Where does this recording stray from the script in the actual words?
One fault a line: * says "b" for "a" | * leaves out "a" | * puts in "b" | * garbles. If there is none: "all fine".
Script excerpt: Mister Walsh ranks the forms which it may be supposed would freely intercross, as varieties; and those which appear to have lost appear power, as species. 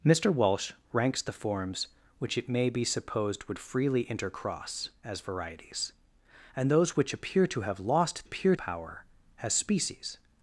all fine